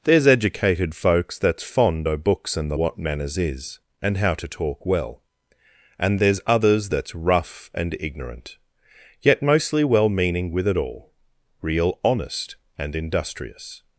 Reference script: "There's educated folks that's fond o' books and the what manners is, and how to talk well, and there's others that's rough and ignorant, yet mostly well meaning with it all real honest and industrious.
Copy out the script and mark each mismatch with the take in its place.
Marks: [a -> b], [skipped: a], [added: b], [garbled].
"There's educated folks that's fond o' books and the what manners is, and how to talk well, and there's others that's rough and ignorant, yet mostly well meaning with it all real honest and industrious.